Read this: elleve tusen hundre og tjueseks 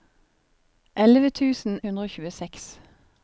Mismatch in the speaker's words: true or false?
false